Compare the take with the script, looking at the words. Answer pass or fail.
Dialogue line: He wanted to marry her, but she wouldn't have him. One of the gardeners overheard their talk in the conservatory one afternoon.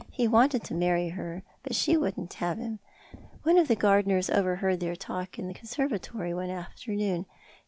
pass